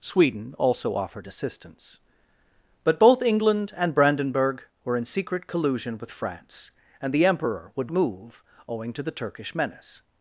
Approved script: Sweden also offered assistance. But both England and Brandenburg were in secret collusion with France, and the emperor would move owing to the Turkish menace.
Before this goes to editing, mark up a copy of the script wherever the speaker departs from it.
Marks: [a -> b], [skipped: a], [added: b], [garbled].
Sweden also offered assistance. But both England and Brandenburg were in secret collusion with France, and the emperor would move owing to the Turkish menace.